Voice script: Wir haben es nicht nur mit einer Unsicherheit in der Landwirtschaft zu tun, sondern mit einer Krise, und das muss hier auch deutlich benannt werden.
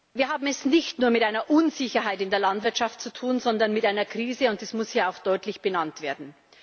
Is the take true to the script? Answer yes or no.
yes